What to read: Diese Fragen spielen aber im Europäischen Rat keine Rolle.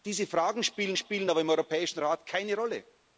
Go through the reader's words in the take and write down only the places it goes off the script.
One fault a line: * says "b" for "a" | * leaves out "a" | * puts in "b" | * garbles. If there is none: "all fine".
* puts in "spielen"